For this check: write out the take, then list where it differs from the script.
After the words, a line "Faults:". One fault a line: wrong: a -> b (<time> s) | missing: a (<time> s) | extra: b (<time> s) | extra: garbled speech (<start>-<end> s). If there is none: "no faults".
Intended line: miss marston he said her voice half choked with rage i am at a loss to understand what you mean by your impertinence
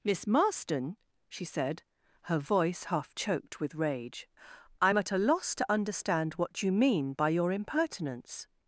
miss marston she said her voice half choked with rage i am at a loss to understand what you mean by your impertinence
Faults:
wrong: he -> she (1.3 s)